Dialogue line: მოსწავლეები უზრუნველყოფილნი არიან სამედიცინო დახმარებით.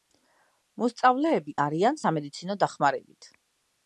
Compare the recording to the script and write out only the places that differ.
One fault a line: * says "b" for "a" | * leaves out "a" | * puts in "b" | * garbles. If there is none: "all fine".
* leaves out "უზრუნველყოფილნი"